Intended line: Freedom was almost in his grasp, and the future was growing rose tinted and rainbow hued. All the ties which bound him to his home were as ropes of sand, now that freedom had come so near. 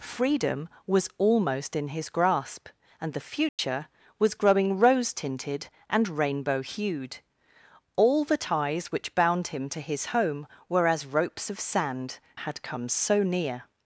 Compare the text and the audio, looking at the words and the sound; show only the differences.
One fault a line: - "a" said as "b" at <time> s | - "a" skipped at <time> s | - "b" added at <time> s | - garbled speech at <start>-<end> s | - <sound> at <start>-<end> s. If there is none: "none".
- dropout at 3.5-3.6 s
- "now that freedom" skipped at 12.2 s